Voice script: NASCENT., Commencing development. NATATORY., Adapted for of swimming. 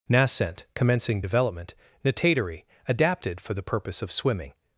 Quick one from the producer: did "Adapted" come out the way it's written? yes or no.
yes